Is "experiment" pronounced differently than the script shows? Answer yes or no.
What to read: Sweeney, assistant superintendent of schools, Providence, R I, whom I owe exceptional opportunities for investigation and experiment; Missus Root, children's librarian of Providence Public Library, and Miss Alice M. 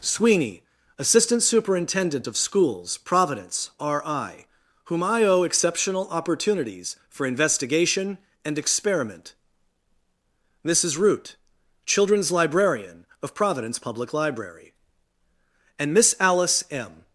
no